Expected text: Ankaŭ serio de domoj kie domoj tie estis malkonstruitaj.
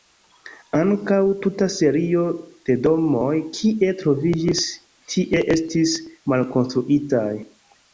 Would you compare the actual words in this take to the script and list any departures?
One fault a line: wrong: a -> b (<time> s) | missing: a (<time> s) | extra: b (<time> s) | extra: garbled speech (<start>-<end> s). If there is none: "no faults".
extra: tuta (1.4 s)
wrong: domoj -> troviĝis (4.0 s)